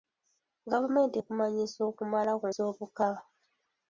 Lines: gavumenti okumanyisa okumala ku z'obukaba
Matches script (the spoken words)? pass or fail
pass